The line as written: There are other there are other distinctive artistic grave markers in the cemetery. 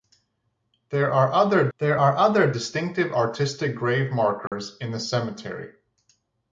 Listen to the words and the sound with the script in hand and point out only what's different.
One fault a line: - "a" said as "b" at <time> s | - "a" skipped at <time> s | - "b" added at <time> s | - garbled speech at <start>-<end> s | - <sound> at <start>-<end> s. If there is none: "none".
- dropout at 4.5-4.5 s